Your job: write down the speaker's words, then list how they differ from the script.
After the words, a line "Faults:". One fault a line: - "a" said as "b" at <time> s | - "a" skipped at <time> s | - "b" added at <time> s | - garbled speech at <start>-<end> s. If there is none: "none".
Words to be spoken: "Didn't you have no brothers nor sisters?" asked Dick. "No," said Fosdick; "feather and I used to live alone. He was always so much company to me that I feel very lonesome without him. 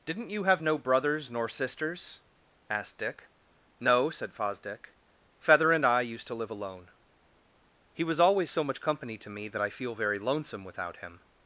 "Didn't you have no brothers nor sisters?" asked Dick. "No," said Fosdick; "feather and I used to live alone. He was always so much company to me that I feel very lonesome without him.
Faults:
none